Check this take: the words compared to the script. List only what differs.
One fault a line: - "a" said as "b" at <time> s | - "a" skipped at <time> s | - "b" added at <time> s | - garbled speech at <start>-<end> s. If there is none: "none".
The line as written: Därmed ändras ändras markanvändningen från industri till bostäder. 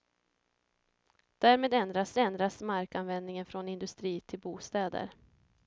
none